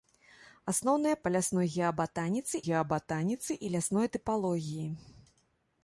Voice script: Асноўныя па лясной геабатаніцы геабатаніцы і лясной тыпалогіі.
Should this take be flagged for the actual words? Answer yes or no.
no